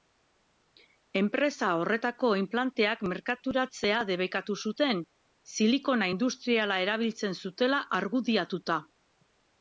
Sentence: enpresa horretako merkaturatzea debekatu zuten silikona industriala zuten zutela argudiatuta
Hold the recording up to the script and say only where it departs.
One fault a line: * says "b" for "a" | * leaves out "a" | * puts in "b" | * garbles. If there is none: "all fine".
* puts in "inplanteak"
* says "erabiltzen" for "zuten"